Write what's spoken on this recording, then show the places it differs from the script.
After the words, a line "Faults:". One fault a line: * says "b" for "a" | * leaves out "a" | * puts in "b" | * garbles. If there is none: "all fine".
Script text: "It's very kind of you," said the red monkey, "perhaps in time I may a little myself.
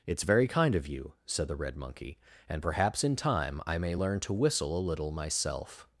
"It's very kind of you," said the red monkey, "and perhaps in time I may learn to whistle a little myself.
Faults:
* puts in "and"
* puts in "learn to whistle"